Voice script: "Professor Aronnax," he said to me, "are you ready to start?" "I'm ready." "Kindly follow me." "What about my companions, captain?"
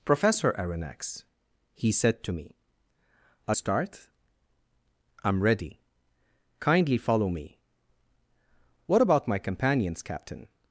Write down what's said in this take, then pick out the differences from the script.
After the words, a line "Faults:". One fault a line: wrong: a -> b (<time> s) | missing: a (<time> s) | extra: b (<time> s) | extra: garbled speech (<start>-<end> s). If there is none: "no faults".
"Professor Aronnax," he said to me, "are start?" "I'm ready." "Kindly follow me." "What about my companions, captain?"
Faults:
missing: you ready to (3.6 s)